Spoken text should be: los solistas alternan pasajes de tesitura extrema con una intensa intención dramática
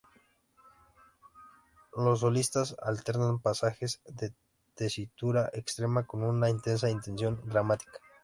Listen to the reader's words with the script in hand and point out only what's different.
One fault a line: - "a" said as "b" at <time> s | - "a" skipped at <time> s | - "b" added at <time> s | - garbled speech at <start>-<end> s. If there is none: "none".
none